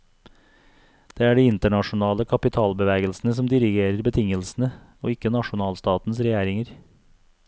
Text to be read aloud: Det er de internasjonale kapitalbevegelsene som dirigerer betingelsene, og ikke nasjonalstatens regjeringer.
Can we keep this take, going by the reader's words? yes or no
yes